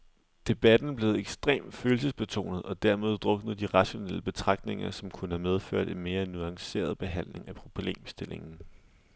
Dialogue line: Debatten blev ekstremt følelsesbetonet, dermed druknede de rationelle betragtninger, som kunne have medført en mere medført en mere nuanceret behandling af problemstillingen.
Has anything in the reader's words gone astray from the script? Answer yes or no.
yes